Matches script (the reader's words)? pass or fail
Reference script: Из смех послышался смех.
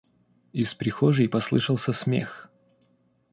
fail